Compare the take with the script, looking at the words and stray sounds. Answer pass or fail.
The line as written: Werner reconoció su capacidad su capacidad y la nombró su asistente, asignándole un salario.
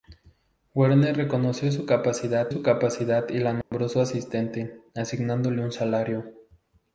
fail